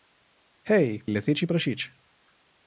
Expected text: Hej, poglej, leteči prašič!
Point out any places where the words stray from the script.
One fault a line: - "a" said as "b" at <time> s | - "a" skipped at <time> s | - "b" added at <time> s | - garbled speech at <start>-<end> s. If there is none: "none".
- "poglej" skipped at 1.0 s